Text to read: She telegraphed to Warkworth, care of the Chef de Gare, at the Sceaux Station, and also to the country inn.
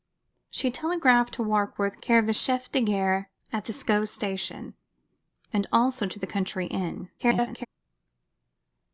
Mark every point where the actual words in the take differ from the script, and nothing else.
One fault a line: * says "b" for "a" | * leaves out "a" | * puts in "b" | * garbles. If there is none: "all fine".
* garbles